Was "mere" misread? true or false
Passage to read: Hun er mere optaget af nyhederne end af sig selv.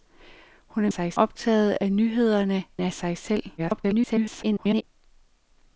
true